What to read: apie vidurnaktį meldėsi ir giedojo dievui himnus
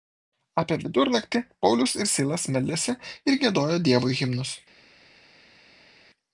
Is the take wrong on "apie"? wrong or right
right